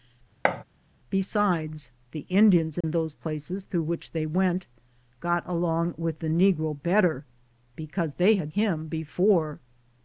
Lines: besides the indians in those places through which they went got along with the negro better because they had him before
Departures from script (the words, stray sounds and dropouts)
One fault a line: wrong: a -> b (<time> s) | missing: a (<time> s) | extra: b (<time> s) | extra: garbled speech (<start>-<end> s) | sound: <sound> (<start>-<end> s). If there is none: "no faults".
sound: thud (0.4-0.6 s)
sound: dropout (2.8-2.8 s)